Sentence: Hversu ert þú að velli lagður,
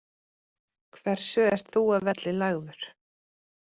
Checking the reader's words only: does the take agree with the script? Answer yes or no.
yes